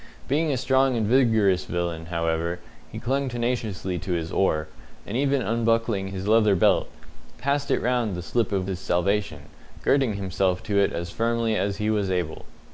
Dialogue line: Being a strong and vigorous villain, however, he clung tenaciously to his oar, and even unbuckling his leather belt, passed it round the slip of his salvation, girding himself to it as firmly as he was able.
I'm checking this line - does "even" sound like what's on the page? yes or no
yes